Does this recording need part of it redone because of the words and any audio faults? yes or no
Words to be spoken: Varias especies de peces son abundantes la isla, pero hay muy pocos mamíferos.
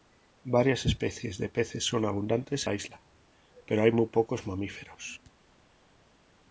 no